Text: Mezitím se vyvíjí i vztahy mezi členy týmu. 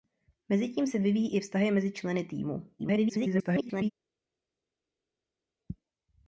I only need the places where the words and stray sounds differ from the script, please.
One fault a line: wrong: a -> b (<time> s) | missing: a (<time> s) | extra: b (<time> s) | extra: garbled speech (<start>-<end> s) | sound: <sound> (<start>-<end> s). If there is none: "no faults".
extra: garbled speech (2.8-3.9 s)